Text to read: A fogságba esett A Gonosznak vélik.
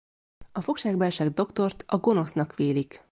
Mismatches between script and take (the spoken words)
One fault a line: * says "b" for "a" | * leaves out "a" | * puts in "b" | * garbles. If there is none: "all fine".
* puts in "Doktort"